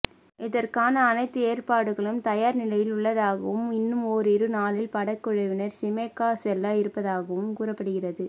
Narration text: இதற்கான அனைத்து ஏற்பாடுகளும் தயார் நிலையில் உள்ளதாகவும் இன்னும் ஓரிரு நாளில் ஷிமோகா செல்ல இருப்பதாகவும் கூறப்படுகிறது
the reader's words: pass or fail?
fail